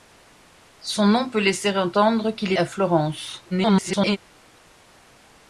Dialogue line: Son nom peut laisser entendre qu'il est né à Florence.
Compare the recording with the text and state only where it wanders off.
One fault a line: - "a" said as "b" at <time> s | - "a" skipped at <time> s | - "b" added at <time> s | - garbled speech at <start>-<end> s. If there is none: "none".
- "né" skipped at 2.6 s
- garbled speech at 3.5-4.2 s